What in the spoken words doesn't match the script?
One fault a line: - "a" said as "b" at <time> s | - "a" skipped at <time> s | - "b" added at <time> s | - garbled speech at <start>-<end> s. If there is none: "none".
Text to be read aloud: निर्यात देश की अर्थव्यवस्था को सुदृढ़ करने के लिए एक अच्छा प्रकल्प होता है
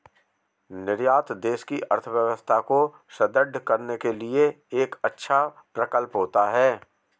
none